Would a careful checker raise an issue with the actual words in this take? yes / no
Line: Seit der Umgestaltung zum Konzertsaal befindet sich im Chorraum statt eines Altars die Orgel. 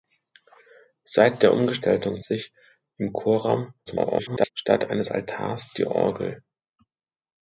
yes